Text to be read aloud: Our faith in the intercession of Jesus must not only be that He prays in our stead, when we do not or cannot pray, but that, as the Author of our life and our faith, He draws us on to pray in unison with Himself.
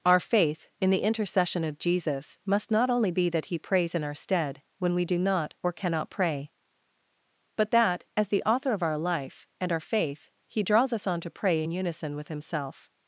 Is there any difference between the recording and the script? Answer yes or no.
no